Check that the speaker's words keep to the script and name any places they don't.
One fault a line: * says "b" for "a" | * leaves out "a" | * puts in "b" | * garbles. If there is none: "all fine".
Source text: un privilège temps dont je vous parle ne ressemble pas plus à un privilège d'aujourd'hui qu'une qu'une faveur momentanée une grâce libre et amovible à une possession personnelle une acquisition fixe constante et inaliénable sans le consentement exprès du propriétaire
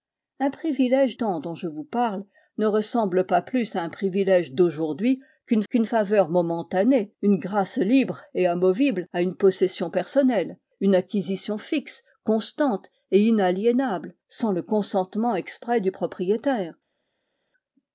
all fine